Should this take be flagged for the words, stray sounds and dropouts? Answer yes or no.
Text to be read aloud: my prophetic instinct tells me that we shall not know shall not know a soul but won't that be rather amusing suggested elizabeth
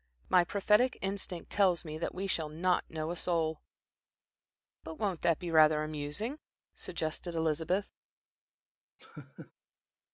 yes